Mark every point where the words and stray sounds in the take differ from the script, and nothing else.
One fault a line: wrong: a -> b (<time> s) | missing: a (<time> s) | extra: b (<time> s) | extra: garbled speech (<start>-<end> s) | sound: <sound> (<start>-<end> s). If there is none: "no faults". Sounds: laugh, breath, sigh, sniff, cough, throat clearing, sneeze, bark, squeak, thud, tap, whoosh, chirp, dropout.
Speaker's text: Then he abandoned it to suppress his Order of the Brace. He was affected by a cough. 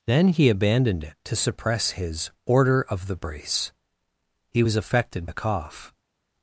missing: by (5.3 s)